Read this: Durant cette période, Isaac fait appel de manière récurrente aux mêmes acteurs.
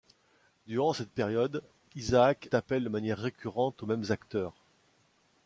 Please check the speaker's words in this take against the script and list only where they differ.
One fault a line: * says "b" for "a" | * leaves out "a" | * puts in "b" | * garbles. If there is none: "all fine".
* leaves out "fait"